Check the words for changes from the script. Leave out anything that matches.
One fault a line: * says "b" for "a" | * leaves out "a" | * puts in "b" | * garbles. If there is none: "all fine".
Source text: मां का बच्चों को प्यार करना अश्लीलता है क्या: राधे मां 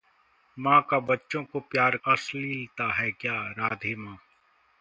* leaves out "करना"